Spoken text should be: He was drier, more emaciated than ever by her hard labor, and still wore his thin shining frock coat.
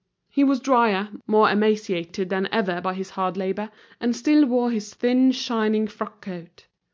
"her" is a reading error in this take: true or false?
true